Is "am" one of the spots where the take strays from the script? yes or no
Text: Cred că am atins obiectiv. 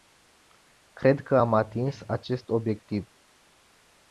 no